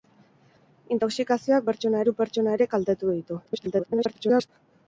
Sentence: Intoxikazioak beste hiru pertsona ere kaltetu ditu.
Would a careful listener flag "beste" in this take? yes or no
yes